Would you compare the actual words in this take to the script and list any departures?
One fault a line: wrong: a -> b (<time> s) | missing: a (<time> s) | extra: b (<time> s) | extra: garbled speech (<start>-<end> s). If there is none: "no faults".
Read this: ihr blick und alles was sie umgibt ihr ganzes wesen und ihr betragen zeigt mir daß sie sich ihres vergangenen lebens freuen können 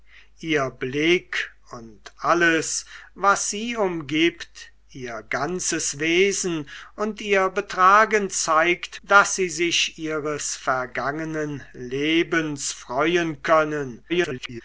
missing: mir (9.0 s)
extra: garbled speech (14.1-14.6 s)